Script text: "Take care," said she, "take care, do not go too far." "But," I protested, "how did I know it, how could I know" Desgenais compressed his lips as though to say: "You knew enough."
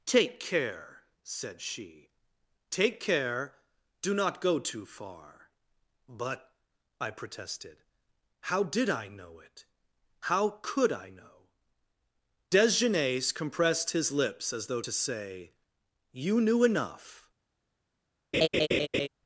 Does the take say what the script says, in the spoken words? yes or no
yes